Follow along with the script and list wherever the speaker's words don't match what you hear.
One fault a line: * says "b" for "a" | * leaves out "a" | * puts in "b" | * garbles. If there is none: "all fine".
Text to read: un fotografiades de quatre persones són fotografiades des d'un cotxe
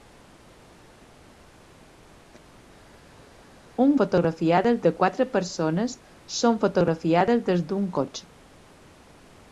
all fine